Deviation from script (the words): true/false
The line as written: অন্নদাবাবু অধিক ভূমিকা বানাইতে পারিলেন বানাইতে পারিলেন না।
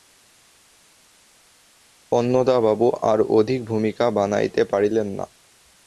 true